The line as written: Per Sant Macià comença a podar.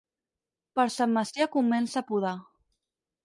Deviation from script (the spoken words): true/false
false